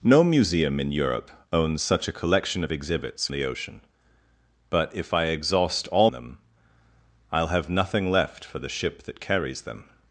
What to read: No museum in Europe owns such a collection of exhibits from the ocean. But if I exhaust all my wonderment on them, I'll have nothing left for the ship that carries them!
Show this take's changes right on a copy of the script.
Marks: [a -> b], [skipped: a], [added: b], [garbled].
No museum in Europe owns such a collection of exhibits [skipped: from] the ocean. But if I exhaust all [skipped: my wonderment on] them, I'll have nothing left for the ship that carries them!